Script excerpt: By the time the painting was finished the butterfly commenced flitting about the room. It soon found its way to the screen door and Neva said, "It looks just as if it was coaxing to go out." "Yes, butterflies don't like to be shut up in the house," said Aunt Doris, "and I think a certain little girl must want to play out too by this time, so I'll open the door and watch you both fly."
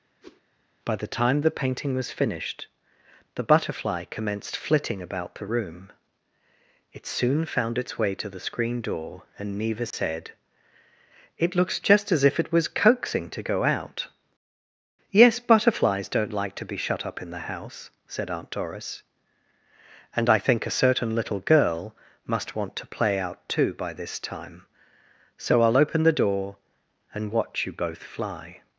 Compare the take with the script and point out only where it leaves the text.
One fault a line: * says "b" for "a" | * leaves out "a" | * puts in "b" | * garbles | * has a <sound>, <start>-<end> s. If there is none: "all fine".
* has a whoosh, 0.2-0.4 s
* has a dropout, 9.9-9.9 s